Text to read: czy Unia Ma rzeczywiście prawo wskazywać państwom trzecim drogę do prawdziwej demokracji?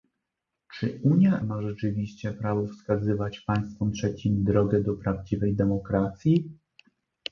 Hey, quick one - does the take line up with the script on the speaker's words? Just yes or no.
yes